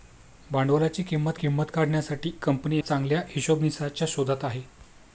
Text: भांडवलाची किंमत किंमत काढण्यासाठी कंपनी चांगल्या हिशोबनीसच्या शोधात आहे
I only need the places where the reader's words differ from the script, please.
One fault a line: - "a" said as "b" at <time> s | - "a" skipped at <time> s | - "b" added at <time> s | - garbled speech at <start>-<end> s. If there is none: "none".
none